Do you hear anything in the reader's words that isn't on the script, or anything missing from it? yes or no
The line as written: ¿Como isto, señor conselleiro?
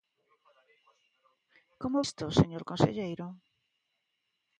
no